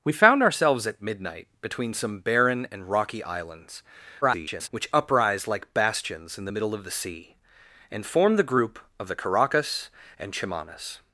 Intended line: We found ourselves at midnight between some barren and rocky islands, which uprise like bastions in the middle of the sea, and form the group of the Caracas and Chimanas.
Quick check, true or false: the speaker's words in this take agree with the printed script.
false